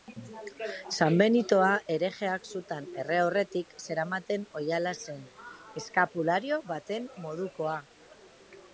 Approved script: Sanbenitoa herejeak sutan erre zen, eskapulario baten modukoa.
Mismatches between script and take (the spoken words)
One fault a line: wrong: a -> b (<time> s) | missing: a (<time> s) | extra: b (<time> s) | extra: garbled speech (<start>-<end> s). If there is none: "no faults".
extra: aurretik zeramaten oihala (3.2 s)